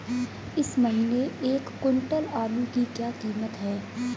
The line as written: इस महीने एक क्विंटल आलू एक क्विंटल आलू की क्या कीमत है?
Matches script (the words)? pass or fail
fail